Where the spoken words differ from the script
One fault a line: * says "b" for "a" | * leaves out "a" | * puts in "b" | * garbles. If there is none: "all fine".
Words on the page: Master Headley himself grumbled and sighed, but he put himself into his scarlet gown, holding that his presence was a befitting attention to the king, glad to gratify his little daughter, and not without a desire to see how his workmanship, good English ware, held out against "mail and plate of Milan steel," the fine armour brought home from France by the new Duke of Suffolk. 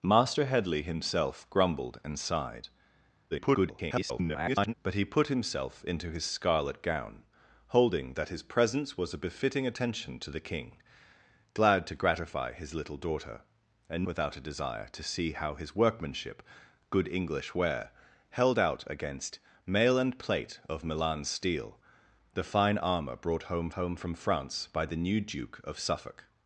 * garbles
* leaves out "not"
* puts in "home"